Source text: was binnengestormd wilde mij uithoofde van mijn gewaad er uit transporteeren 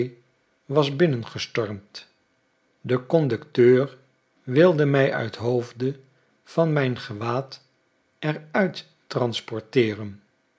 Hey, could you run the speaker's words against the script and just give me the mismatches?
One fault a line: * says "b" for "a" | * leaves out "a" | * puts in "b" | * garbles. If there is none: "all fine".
* puts in "de conducteur"